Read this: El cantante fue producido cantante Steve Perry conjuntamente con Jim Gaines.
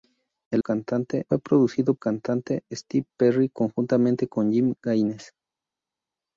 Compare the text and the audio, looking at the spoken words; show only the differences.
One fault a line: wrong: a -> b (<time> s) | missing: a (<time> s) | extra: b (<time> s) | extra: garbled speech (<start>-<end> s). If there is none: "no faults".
no faults